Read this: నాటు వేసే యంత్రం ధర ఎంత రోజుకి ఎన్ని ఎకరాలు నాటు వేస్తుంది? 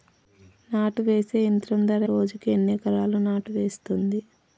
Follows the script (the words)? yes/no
no